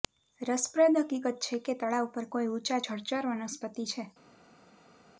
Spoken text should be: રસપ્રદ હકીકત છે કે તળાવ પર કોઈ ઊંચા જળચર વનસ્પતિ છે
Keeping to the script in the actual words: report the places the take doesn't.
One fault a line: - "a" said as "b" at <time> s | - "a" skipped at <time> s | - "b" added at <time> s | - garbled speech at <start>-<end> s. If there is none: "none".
none